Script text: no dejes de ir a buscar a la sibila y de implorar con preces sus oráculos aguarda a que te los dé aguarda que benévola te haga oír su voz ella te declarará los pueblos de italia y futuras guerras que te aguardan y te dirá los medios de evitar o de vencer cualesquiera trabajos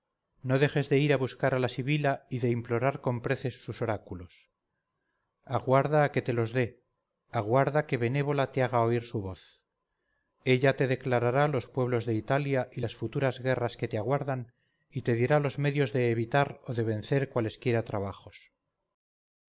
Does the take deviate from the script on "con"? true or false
false